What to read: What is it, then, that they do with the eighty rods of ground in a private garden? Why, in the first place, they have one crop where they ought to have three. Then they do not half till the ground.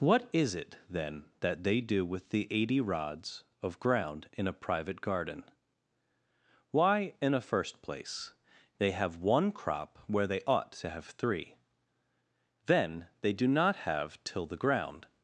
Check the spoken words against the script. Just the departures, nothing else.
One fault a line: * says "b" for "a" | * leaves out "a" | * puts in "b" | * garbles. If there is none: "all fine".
* says "a" for "the"
* says "have" for "half"